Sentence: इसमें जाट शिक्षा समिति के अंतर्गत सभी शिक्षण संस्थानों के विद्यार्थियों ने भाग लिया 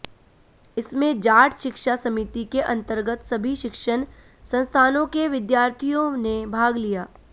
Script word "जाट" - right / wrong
right